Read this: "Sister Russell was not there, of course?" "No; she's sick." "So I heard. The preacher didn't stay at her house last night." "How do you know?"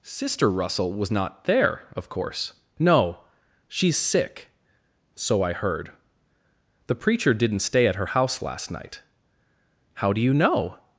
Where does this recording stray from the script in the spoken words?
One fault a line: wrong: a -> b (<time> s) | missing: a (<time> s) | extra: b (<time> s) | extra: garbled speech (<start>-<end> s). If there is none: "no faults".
no faults